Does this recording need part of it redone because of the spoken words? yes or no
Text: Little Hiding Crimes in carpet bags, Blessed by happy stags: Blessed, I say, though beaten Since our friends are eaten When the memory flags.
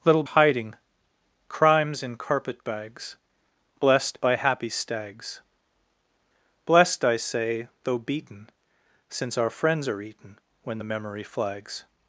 no